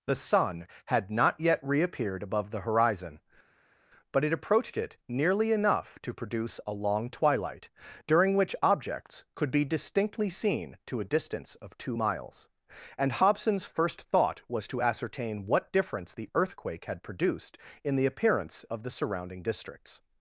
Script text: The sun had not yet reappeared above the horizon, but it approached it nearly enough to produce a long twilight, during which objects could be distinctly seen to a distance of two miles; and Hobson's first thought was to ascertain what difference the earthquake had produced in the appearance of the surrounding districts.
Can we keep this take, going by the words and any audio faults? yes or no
yes